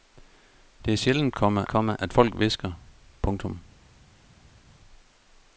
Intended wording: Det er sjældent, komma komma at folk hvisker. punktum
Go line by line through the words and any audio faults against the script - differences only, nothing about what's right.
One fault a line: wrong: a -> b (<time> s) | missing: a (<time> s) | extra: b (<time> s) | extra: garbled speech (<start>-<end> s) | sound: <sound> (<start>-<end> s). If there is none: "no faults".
no faults